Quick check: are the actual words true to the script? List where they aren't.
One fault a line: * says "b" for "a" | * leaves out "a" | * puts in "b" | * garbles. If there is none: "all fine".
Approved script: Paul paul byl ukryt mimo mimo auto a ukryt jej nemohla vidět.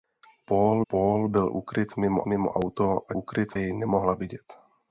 all fine